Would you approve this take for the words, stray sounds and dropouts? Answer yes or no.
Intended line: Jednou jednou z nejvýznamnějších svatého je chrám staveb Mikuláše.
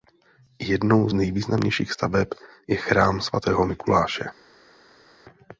no